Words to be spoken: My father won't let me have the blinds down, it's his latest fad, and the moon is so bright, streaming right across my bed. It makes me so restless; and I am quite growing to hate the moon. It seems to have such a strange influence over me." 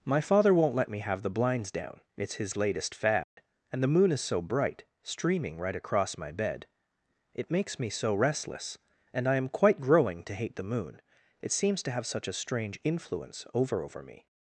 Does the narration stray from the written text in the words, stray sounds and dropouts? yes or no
yes